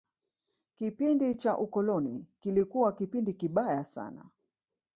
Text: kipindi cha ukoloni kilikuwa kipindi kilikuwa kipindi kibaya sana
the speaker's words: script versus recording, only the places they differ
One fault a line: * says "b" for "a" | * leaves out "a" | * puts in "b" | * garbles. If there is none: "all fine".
* leaves out "kilikuwa kipindi"